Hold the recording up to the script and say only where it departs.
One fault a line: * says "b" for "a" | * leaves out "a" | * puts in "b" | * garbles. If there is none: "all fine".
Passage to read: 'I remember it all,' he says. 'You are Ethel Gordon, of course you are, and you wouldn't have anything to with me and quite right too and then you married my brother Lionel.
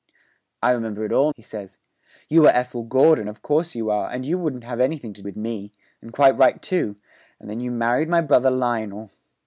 all fine